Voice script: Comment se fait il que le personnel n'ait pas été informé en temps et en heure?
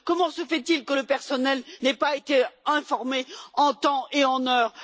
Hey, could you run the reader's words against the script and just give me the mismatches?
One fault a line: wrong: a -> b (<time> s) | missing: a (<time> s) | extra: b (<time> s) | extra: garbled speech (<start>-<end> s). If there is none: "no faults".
no faults